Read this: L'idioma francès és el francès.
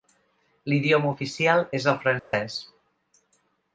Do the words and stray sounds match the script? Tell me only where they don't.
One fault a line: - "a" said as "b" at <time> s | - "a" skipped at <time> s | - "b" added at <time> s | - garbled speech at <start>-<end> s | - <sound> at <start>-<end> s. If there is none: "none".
- "francès" said as "oficial" at 1.1 s
- dropout at 2.2-2.3 s